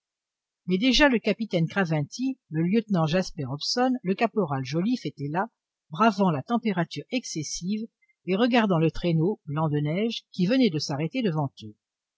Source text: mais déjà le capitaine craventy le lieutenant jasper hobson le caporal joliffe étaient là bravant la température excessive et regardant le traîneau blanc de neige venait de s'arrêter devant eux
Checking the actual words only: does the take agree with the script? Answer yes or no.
no